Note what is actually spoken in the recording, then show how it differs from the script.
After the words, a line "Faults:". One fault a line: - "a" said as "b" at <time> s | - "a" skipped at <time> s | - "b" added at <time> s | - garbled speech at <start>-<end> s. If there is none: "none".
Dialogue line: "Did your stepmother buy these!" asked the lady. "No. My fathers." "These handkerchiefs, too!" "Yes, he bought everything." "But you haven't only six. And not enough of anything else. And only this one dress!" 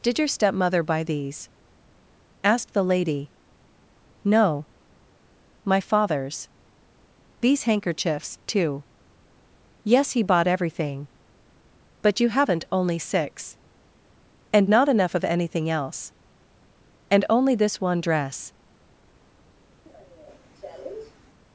"Did your stepmother buy these!" asked the lady. "No. My fathers." "These handkerchiefs, too!" "Yes, he bought everything." "But you haven't only six. And not enough of anything else. And only this one dress!"
Faults:
none